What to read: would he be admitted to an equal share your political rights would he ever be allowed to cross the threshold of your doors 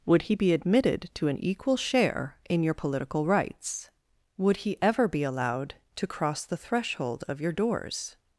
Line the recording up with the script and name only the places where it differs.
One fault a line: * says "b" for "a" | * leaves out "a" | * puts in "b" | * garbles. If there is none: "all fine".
* puts in "in"